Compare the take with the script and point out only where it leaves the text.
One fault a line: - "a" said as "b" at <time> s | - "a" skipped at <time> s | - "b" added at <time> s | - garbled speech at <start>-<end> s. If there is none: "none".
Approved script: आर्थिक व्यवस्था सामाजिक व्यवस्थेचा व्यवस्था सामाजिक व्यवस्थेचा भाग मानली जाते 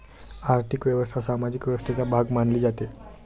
- "व्यवस्था सामाजिक व्यवस्थेचा" skipped at 2.0 s